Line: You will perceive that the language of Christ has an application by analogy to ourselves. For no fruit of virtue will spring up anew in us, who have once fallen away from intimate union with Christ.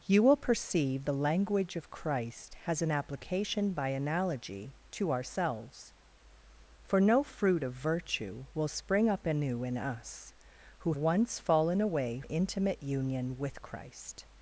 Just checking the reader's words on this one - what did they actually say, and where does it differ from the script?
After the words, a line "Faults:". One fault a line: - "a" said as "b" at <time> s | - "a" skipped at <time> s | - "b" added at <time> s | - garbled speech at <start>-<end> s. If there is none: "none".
You will perceive the language of Christ has an application by analogy to ourselves. For no fruit of virtue will spring up anew in us, who once fallen away intimate union with Christ.
Faults:
- "that" skipped at 1.1 s
- "have" skipped at 10.9 s
- "from" skipped at 12.2 s